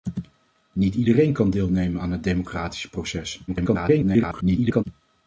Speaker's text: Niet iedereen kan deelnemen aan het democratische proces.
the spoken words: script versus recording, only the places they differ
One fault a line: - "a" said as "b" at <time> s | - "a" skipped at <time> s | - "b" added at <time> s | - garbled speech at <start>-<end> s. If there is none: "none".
- garbled speech at 3.5-4.8 s